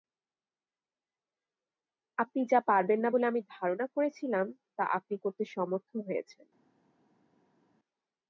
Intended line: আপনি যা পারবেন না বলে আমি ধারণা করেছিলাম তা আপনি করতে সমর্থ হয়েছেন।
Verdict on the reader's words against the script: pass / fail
pass